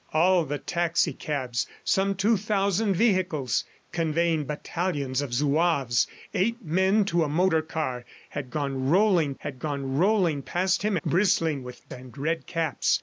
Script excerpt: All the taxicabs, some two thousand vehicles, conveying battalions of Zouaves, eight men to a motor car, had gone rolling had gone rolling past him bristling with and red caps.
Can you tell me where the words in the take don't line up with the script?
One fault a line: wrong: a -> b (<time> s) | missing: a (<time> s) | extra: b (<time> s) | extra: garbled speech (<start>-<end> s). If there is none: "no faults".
no faults